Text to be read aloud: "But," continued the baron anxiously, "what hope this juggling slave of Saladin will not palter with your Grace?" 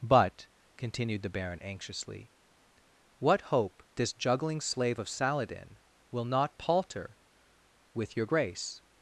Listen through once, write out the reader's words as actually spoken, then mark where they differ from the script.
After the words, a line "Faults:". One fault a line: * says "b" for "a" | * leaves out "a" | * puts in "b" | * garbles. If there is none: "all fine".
"But," continued the baron anxiously, "what hope this juggling slave of Saladin will not palter with your Grace?"
Faults:
all fine